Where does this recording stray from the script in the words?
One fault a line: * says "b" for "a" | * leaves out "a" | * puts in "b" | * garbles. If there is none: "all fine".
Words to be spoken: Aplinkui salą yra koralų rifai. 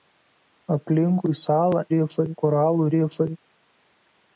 * says "rifai" for "yra"